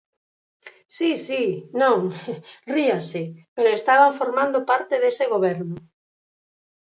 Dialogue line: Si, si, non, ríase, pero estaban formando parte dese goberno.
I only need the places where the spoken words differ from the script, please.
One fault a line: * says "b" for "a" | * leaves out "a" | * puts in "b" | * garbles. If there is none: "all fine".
all fine